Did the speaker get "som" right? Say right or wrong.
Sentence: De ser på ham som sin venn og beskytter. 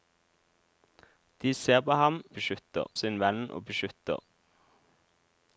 wrong